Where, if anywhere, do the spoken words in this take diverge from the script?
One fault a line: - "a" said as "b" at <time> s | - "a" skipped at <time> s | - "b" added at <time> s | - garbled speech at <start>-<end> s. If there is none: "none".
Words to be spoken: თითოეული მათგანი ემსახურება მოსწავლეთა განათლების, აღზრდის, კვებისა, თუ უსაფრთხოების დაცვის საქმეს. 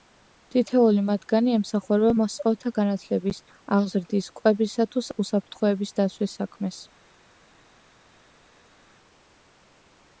none